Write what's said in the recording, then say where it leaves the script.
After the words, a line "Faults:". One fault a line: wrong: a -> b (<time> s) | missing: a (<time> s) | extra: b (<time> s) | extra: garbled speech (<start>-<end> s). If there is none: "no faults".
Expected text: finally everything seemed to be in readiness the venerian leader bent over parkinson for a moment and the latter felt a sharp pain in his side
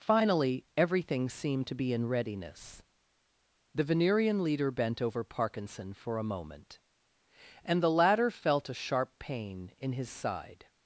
finally everything seemed to be in readiness the venerian leader bent over parkinson for a moment and the latter felt a sharp pain in his side
Faults:
no faults